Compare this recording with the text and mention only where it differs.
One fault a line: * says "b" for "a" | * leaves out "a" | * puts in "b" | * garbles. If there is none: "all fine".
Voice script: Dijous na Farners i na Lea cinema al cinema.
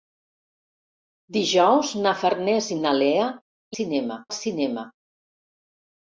all fine